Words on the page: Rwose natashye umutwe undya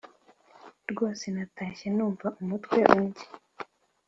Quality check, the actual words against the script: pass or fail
fail